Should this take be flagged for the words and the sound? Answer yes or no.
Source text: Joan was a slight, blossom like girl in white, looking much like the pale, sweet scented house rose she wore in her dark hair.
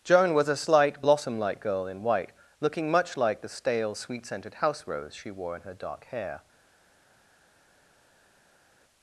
yes